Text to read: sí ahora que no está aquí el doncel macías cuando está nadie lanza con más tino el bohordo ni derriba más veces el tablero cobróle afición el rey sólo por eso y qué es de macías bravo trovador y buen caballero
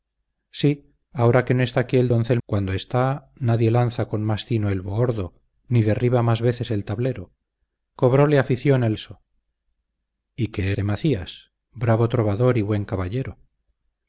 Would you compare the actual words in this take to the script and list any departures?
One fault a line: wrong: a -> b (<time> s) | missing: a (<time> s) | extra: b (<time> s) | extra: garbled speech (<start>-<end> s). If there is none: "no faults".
missing: macías (2.4 s)
missing: rey sólo por (9.0 s)
missing: es (10.7 s)